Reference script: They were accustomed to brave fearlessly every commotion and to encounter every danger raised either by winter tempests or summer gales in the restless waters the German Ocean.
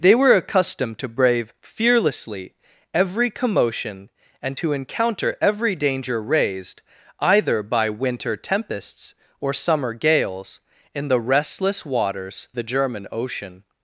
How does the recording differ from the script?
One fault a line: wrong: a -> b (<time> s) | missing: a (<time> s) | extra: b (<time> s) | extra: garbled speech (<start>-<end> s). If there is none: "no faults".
no faults